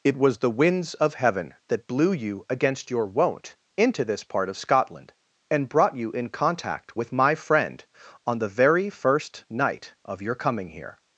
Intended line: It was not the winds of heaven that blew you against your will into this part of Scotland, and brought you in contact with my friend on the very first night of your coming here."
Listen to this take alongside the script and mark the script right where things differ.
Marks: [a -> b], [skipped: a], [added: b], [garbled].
It was [skipped: not] the winds of heaven that blew you against your [will -> won't] into this part of Scotland, and brought you in contact with my friend on the very first night of your coming here."